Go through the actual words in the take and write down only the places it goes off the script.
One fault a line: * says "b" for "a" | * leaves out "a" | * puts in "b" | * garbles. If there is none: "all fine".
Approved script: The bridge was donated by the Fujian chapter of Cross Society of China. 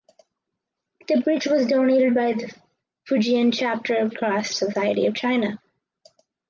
all fine